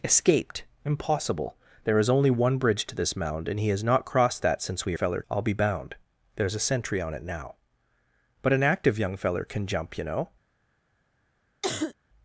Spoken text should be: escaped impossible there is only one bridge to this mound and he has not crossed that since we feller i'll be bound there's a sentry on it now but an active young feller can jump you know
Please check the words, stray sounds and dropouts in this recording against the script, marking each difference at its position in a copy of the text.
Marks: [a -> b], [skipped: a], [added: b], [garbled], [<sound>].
escaped impossible there is only one bridge to this mound and he has not crossed that since we feller i'll be bound there's a sentry on it now but an active young feller can jump you know [cough]